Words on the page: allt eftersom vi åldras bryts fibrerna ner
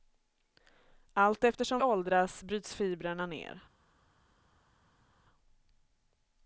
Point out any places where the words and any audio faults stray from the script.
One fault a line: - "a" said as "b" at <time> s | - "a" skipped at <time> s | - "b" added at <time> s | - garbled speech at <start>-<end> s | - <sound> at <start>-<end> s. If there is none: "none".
- "vi" skipped at 1.8 s